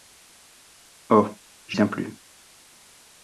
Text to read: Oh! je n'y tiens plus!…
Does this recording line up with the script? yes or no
no